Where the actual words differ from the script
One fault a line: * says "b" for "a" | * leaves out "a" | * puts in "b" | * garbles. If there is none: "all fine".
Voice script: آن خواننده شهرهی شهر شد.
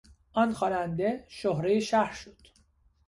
all fine